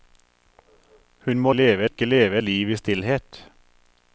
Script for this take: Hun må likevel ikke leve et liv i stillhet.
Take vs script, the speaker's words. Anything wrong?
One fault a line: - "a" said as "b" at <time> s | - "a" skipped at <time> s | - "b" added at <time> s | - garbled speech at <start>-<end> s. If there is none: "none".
- "likevel" said as "leve" at 1.5 s
- "et" skipped at 2.4 s